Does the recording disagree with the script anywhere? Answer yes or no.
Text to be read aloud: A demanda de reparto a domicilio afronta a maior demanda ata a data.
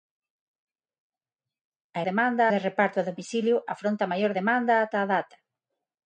no